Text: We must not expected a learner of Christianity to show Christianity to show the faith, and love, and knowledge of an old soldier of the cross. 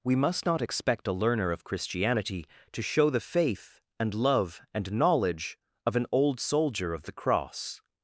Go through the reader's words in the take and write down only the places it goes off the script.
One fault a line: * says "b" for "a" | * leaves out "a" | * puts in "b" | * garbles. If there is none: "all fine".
* says "expect" for "expected"
* leaves out "Christianity to show"